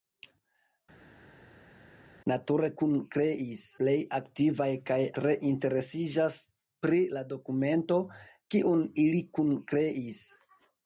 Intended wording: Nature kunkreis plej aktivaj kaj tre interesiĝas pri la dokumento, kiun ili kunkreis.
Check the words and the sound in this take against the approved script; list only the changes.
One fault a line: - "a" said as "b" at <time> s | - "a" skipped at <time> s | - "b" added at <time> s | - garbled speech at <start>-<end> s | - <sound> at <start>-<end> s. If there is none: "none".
none